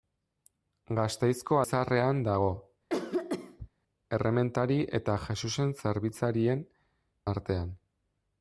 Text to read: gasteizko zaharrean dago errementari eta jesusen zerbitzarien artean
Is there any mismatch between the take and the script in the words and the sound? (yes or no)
yes